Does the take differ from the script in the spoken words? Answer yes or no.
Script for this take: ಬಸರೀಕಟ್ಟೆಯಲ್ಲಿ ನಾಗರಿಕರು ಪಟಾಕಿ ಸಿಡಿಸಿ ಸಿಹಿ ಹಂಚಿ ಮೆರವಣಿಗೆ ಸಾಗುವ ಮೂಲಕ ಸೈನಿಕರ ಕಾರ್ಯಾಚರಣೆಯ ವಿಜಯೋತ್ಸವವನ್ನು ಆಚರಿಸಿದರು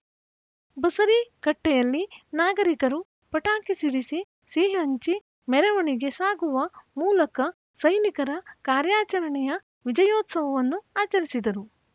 no